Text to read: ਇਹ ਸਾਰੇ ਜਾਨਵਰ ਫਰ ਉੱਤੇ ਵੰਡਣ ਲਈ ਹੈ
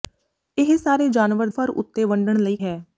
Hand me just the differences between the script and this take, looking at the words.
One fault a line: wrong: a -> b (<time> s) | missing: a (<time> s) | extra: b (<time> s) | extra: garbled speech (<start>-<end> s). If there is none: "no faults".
no faults